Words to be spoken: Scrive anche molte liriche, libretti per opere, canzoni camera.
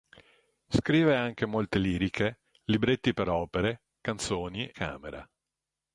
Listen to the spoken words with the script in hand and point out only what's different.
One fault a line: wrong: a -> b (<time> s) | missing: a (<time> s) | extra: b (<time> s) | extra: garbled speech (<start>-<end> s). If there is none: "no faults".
no faults